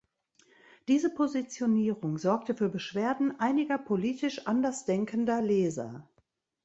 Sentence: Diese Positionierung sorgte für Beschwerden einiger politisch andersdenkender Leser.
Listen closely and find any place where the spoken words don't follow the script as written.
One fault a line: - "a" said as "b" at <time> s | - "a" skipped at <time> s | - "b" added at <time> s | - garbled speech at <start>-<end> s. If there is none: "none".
none